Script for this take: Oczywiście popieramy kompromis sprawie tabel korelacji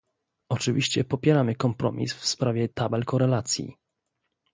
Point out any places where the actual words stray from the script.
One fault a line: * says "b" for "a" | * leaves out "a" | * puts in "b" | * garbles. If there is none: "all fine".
* puts in "w"